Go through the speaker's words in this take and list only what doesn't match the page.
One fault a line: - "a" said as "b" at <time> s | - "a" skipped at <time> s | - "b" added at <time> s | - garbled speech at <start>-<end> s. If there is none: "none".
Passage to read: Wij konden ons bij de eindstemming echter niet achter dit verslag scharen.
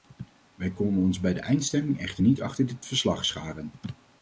none